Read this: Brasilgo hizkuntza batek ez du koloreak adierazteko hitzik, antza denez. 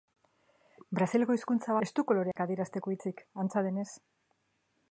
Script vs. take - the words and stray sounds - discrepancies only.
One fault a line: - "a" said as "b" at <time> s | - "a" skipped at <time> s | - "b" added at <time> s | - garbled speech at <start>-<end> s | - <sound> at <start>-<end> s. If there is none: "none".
- "batek" skipped at 1.8 s
- dropout at 2.3-2.4 s